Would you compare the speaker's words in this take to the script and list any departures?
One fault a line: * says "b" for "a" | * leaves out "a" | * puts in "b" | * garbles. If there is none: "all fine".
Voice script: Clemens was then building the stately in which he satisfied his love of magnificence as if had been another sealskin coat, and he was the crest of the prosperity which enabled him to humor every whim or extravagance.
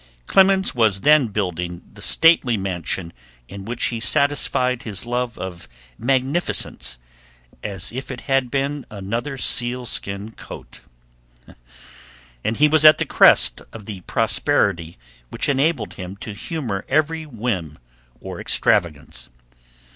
* puts in "mansion"
* puts in "it"
* puts in "at"